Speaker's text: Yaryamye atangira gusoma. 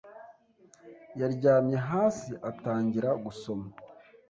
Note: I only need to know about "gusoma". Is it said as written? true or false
true